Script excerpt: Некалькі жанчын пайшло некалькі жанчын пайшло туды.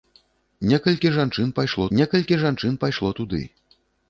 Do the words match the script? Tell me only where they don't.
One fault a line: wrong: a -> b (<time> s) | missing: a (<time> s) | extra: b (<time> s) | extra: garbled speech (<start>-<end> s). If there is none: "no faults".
no faults